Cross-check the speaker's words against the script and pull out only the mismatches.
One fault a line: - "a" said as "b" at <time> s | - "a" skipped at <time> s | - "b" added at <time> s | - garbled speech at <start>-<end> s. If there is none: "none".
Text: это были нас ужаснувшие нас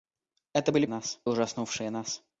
none